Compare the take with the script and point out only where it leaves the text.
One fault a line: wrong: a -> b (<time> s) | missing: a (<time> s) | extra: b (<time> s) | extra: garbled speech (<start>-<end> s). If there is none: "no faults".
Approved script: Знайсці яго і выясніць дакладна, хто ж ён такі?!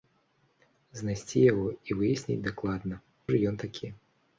missing: хто (3.0 s)